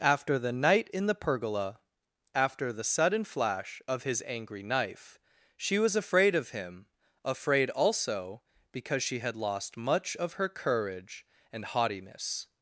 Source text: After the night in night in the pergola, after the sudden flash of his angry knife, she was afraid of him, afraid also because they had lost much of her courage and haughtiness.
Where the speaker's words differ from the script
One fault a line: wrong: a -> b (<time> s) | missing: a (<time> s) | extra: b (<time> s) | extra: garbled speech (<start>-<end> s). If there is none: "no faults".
missing: night in (1.1 s)
wrong: they -> she (9.0 s)